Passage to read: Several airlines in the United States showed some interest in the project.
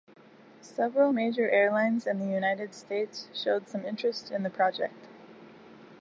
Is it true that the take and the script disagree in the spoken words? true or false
true